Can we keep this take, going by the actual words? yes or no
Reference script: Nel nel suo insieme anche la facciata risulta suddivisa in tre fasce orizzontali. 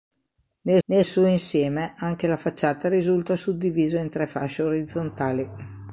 yes